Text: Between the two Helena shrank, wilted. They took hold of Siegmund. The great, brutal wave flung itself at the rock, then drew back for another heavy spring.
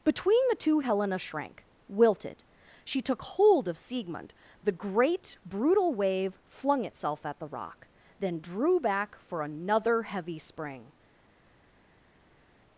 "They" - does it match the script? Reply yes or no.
no